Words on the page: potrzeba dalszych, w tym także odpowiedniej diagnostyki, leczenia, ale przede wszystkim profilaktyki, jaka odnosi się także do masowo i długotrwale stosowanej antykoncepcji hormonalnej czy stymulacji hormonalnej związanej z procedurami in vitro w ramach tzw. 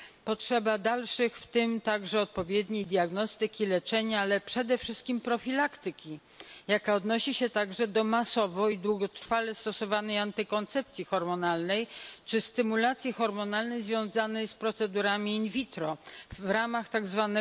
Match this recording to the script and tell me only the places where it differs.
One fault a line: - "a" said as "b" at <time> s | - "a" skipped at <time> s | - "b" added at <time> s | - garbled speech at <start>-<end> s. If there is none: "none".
none